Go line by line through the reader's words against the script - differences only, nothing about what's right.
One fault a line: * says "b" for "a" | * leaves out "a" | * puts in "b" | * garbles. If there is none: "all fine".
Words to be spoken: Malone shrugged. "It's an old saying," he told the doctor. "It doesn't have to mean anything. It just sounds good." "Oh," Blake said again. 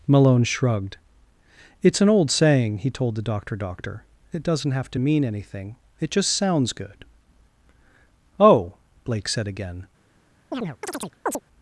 * puts in "doctor"